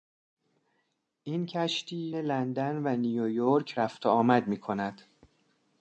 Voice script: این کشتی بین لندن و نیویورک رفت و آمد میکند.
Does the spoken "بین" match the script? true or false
false